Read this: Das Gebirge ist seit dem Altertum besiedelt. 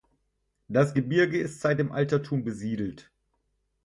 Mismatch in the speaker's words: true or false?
false